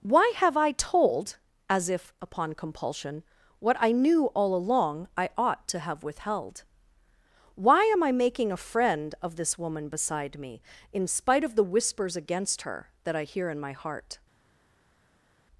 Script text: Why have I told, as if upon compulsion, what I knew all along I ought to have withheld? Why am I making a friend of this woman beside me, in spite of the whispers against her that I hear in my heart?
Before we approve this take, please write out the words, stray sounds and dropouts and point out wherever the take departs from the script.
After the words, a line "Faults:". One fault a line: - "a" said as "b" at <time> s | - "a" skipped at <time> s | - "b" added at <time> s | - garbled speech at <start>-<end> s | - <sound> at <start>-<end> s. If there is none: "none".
Why have I told, as if upon compulsion, what I knew all along I ought to have withheld? Why am I making a friend of this woman beside me, in spite of the whispers against her that I hear in my heart?
Faults:
none